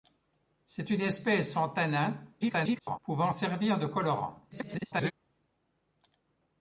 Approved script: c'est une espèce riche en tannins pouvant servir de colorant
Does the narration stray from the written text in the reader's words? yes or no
yes